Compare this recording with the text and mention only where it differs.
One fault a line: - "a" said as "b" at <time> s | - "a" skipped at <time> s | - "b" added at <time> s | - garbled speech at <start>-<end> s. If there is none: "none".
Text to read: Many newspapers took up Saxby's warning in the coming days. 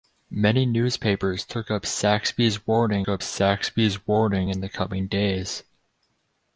- "up Saxby's warning" added at 3.1 s